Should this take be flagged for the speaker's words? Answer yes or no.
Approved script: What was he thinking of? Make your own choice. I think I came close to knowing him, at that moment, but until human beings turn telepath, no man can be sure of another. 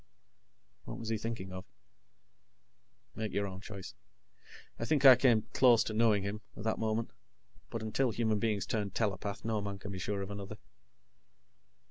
no